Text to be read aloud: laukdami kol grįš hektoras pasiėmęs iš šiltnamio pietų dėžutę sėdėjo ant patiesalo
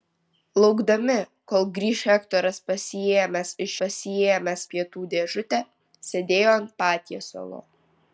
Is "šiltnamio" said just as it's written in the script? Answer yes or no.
no